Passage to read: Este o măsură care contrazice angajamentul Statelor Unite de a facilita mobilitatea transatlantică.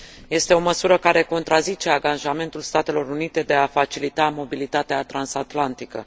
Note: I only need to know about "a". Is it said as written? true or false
true